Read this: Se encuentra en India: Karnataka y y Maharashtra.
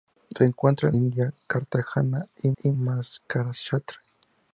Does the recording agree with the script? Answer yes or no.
yes